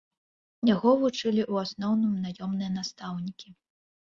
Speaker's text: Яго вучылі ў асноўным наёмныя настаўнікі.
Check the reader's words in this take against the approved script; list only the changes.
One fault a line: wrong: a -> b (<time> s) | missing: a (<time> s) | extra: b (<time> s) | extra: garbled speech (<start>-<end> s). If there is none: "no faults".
no faults